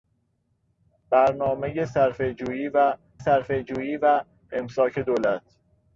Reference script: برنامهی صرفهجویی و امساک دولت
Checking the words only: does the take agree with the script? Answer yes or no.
no